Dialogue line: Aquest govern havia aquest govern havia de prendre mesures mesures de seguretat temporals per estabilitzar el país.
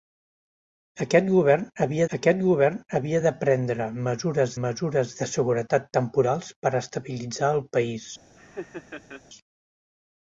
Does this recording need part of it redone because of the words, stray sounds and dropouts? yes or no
yes